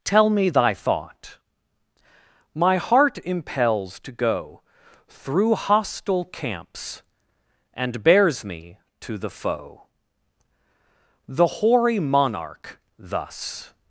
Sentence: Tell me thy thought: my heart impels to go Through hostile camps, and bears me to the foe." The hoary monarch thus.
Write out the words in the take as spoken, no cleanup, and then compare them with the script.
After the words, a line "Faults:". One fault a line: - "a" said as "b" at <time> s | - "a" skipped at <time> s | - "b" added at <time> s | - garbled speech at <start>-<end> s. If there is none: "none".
Tell me thy thought: my heart impels to go Through hostile camps, and bears me to the foe." The hoary monarch thus.
Faults:
none